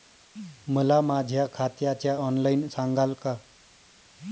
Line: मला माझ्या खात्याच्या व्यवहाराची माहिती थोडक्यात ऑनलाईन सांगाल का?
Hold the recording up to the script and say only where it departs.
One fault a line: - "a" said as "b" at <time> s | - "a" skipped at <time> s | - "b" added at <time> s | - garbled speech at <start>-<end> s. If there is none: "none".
- "व्यवहाराची माहिती थोडक्यात" skipped at 2.2 s